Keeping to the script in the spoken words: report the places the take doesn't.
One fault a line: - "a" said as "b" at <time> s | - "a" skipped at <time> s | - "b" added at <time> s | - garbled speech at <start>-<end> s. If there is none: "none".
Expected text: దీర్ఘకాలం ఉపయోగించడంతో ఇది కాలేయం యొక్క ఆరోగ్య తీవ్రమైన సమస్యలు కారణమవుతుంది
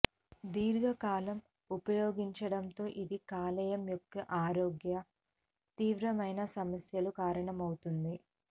none